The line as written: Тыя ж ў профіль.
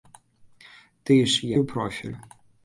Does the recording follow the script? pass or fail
pass